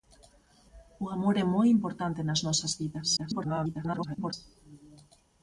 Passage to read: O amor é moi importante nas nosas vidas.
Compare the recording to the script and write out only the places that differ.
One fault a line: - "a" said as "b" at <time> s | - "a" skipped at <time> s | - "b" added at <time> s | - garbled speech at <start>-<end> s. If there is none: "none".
- garbled speech at 3.2-4.3 s